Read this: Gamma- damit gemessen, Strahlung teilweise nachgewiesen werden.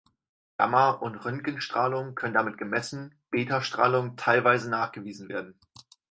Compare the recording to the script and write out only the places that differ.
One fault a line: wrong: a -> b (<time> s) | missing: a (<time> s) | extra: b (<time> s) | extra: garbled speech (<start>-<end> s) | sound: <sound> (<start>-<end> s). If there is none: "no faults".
extra: und Röntgenstrahlung können (0.9 s)
extra: Beta (3.3 s)